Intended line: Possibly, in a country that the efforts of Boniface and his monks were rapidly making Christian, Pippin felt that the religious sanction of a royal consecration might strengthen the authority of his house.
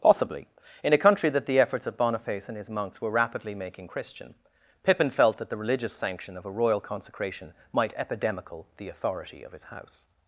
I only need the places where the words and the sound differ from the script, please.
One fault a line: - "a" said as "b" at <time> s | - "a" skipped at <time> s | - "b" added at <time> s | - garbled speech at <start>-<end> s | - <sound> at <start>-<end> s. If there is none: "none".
- "strengthen" said as "epidemical" at 8.0 s